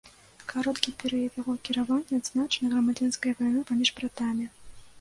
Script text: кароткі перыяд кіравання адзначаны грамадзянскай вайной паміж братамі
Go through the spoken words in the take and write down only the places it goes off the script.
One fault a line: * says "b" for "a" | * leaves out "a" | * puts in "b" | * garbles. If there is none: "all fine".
* puts in "яго"